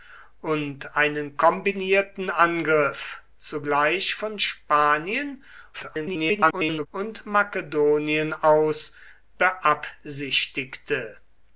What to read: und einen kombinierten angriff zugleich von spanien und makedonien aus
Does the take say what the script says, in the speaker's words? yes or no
no